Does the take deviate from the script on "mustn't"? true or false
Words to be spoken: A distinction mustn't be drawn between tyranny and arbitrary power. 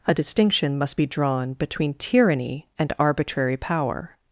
true